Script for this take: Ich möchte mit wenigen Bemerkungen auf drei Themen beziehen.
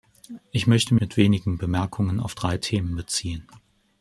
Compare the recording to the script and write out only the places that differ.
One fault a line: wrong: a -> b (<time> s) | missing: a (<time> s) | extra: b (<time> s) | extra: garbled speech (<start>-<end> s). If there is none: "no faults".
no faults